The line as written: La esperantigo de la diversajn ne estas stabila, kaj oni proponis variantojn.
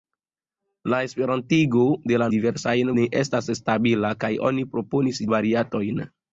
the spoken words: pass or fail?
pass